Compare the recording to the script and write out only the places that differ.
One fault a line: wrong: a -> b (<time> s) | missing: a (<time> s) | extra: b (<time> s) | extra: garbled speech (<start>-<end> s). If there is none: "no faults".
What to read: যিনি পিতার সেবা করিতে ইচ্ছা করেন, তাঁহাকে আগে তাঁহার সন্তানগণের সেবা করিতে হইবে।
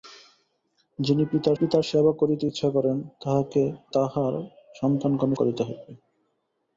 extra: পিতার (1.5 s)
missing: আগে (3.6 s)
missing: সেবা (5.4 s)